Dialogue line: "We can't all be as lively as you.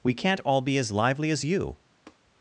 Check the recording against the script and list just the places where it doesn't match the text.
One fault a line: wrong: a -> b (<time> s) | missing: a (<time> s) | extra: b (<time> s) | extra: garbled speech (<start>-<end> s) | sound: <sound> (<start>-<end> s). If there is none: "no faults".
sound: tap (2.1-2.2 s)